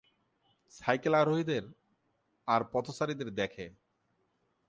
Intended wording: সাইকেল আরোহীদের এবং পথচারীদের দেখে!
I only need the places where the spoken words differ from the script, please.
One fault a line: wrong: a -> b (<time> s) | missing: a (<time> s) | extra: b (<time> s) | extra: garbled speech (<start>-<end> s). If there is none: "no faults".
wrong: এবং -> আর (2.5 s)